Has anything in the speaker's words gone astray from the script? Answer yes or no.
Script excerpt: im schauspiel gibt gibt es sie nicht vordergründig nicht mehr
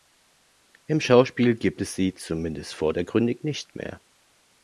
yes